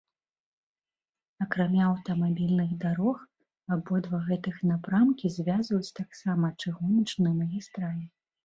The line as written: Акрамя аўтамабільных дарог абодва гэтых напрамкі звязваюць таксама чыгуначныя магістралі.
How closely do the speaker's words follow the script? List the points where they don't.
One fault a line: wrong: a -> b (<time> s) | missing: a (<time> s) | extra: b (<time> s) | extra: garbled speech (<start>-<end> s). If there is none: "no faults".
no faults